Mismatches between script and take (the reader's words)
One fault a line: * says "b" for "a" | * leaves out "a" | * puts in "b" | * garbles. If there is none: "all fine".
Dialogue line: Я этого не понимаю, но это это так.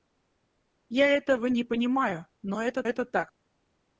all fine